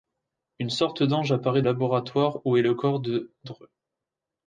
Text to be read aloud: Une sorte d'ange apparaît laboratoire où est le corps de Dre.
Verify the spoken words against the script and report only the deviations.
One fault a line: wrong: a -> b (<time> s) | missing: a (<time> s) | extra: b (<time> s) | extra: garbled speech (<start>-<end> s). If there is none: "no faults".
no faults